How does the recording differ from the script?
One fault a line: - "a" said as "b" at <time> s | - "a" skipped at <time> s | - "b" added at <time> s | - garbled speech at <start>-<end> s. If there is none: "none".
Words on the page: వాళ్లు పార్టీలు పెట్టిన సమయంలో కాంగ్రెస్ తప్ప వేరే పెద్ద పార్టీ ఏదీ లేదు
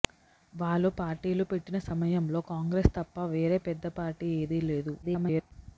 - garbled speech at 5.0-5.5 s